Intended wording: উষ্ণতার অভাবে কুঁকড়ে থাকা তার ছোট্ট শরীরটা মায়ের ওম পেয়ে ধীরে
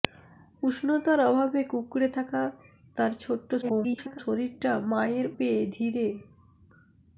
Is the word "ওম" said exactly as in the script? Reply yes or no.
no